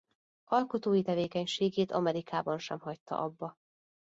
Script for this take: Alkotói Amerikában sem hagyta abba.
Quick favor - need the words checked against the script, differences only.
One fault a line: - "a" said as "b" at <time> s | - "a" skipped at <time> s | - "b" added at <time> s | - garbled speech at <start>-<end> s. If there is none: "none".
- "tevékenységét" added at 1.0 s